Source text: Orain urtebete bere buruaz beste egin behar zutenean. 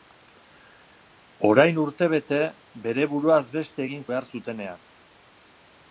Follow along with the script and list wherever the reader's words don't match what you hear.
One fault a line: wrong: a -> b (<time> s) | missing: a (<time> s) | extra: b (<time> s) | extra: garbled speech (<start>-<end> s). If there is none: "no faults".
no faults